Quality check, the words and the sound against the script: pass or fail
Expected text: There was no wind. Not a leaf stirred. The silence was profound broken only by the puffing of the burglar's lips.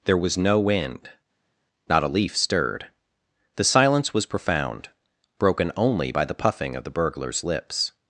pass